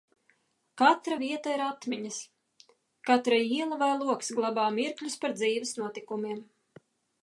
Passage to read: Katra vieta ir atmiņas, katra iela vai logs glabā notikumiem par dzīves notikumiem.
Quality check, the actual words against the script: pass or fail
fail